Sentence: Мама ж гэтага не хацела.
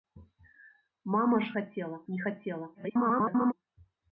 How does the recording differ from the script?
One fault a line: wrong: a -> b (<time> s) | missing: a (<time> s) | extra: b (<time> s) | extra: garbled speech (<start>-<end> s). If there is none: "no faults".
wrong: гэтага -> хацела (1.6 s)
extra: garbled speech (2.7-3.5 s)